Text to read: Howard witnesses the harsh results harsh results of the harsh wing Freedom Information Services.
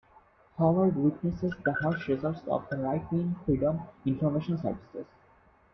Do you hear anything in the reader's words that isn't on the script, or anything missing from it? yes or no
yes